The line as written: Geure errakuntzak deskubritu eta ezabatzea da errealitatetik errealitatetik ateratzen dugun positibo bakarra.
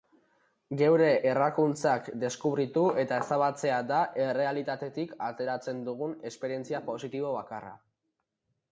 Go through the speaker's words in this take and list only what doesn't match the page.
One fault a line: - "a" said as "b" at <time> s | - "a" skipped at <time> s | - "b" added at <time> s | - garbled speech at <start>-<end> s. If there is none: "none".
- "errealitatetik" skipped at 5.2 s
- "esperientzia" added at 6.3 s